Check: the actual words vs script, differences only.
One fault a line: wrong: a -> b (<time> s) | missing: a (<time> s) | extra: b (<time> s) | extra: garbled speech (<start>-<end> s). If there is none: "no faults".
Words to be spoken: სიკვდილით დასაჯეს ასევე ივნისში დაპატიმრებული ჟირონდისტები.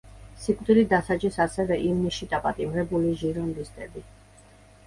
no faults